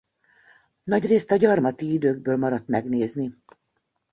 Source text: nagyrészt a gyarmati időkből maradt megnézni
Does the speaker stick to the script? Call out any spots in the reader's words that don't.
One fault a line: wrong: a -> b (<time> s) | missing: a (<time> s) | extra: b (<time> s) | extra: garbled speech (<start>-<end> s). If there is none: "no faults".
no faults